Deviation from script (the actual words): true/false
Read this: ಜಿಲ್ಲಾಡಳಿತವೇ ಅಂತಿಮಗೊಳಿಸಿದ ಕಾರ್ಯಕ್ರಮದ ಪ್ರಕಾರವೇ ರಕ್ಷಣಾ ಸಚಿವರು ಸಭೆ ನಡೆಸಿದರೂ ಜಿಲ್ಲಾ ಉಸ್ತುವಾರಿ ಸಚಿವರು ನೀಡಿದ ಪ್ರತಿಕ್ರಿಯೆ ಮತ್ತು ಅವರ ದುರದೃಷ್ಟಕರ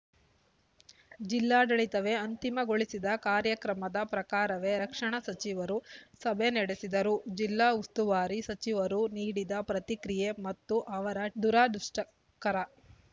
false